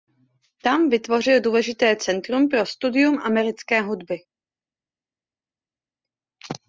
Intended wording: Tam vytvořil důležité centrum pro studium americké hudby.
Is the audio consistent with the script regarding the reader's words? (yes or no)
yes